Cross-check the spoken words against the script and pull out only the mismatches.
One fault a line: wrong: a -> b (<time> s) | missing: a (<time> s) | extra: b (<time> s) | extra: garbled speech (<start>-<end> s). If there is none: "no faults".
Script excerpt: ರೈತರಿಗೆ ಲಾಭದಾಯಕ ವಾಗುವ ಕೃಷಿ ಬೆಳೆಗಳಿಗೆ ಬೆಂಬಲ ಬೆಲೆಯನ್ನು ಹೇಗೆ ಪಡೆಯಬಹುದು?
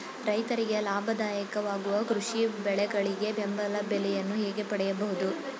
no faults